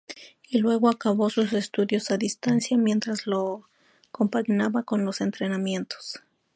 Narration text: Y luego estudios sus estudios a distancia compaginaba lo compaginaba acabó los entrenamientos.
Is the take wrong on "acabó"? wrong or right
wrong